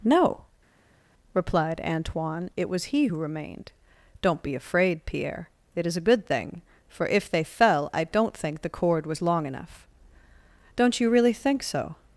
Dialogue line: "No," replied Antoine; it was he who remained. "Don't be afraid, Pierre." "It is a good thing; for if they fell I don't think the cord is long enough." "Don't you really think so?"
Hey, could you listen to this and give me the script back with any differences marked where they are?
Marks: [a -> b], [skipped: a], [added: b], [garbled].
"No," replied Antoine; it was he who remained. "Don't be afraid, Pierre." "It is a good thing; for if they fell I don't think the cord [is -> was] long enough." "Don't you really think so?"